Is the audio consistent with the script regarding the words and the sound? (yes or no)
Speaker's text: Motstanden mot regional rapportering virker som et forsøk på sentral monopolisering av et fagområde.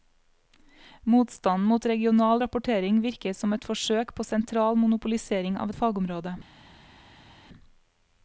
yes